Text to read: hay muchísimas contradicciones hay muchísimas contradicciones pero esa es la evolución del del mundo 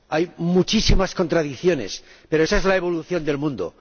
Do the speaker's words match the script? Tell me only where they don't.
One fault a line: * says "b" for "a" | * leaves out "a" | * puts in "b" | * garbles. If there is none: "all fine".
* leaves out "hay muchísimas contradicciones"
* leaves out "del"